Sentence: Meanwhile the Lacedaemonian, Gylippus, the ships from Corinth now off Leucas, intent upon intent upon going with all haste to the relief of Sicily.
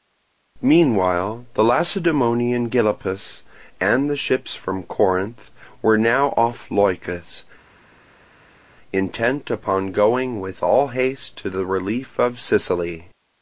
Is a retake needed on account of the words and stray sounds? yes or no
yes